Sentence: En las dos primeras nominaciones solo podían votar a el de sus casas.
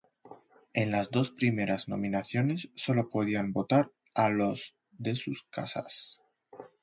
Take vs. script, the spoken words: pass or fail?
fail